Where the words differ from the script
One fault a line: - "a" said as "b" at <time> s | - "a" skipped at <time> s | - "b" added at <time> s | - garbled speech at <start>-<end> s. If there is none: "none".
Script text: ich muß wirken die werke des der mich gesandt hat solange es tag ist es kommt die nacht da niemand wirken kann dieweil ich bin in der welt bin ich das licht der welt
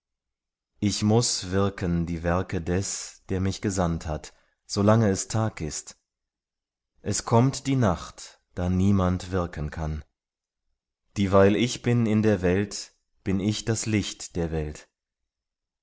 none